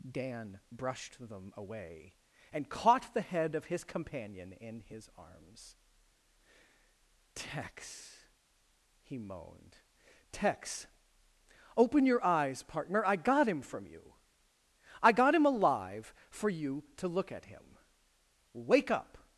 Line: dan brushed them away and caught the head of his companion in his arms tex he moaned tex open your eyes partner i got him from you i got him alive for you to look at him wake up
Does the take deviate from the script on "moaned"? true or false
false